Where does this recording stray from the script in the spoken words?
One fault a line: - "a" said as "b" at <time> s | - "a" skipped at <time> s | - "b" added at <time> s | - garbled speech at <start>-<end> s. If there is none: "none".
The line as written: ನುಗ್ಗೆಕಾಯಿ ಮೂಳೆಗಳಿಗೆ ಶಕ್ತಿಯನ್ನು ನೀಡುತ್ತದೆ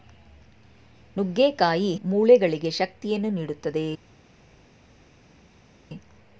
none